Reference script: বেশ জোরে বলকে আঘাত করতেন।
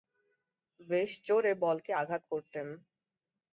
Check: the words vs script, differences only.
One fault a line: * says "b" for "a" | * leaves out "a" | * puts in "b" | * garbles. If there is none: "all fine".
all fine